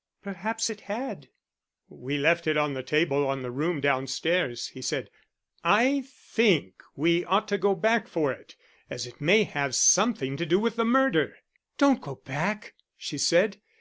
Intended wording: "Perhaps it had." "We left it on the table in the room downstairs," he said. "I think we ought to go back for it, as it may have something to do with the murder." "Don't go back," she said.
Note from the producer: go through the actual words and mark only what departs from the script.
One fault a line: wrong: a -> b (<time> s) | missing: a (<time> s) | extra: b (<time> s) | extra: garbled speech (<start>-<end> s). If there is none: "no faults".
no faults